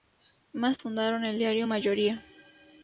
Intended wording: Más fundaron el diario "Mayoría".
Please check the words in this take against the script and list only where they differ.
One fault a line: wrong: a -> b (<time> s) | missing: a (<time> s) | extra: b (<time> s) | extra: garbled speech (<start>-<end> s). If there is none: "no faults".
no faults